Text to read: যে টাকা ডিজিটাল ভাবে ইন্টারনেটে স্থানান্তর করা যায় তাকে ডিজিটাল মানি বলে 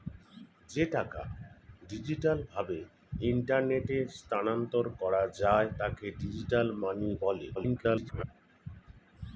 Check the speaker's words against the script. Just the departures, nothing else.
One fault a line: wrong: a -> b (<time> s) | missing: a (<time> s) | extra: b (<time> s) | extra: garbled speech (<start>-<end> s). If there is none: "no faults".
extra: garbled speech (7.5-8.2 s)